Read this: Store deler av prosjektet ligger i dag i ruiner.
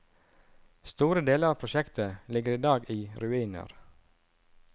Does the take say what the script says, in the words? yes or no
yes